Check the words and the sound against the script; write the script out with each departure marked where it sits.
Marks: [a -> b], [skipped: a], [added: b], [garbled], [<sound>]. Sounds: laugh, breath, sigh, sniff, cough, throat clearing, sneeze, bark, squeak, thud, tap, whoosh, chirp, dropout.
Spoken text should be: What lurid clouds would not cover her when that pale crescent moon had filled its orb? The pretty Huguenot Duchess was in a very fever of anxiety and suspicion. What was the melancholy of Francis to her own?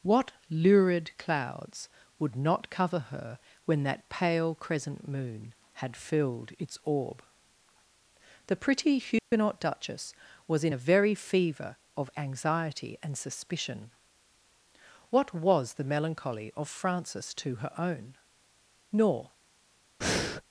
What lurid clouds would not cover her when that pale crescent moon had filled its orb? The pretty Huguenot [dropout] Duchess was in a very fever of anxiety and suspicion. What was the melancholy of Francis to her own? [added: Nor] [breath]